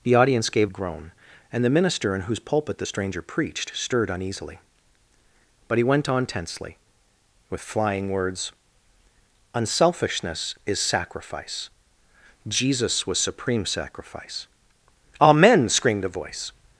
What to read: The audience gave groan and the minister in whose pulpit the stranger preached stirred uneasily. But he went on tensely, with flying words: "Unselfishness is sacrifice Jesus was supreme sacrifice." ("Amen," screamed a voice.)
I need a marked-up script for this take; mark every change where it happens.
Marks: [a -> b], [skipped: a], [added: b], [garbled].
The audience gave groan and the minister in whose pulpit the stranger preached stirred uneasily. But he went on tensely, with flying words: "Unselfishness is sacrifice Jesus was supreme sacrifice." ("Amen," screamed a voice.)